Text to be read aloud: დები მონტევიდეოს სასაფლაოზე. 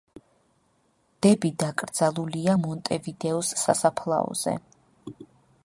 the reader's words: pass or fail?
fail